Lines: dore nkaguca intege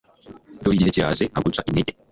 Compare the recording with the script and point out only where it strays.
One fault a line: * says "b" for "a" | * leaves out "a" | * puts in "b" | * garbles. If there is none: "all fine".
* puts in "igihe kiraje"